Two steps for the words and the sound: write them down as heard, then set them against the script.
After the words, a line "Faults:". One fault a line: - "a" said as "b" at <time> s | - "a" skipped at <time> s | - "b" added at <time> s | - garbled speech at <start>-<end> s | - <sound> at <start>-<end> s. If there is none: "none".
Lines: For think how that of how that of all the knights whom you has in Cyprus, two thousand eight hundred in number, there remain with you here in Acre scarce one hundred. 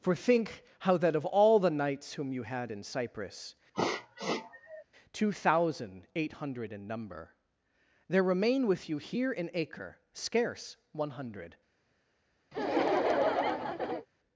For think how that of all the knights whom you had in Cyprus, two thousand eight hundred in number, there remain with you here in Acre scarce one hundred.
Faults:
- "how that of" skipped at 1.2 s
- "has" said as "had" at 2.4 s
- sniff at 3.7-4.8 s
- laugh at 12.5-14.1 s